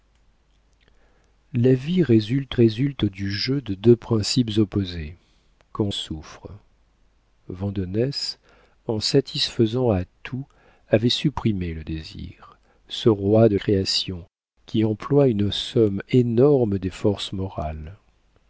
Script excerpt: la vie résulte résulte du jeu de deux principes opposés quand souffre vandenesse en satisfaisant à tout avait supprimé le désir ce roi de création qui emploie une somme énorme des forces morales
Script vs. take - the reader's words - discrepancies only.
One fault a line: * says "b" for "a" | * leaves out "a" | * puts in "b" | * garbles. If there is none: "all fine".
all fine